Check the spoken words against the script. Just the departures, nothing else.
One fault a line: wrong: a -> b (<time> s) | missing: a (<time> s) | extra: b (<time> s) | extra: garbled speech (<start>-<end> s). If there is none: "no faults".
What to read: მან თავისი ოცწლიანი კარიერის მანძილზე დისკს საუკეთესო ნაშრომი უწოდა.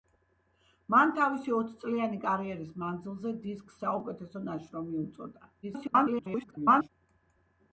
extra: garbled speech (5.6-6.9 s)